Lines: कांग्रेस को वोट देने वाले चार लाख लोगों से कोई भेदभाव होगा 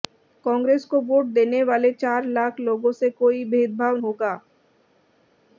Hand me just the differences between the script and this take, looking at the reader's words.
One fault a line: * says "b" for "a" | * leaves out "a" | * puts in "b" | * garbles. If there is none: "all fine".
all fine